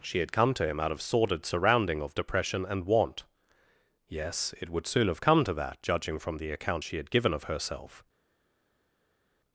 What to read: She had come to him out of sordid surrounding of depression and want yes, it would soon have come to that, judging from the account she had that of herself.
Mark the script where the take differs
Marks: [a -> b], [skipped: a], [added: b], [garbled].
She had come to him out of sordid surrounding of depression and want yes, it would soon have come to that, judging from the account she had [that -> given] of herself.